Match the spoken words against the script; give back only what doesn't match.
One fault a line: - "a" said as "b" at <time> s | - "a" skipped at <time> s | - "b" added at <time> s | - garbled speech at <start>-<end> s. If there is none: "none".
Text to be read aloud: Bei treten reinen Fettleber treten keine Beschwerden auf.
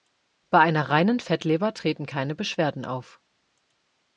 - "treten" said as "einer" at 0.6 s